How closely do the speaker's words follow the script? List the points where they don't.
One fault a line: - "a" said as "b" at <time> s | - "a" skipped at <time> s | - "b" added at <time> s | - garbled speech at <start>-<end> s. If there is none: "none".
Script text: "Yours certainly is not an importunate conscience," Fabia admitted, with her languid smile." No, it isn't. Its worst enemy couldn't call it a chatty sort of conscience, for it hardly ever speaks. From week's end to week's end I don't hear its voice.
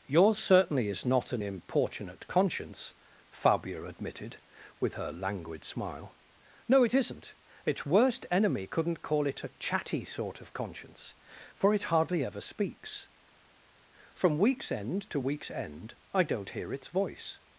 none